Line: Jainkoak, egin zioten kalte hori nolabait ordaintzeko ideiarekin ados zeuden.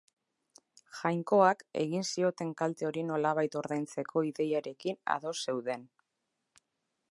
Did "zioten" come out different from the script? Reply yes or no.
no